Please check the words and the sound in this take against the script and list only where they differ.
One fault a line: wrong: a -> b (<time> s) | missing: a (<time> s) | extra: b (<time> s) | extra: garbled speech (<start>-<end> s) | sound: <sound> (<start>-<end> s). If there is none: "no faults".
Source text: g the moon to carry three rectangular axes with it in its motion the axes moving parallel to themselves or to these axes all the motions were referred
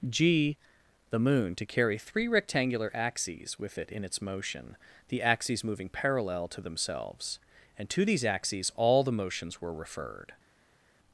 wrong: or -> and (7.8 s)